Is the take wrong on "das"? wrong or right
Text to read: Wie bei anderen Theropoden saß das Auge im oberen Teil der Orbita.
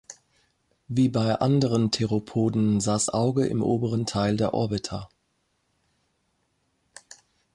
wrong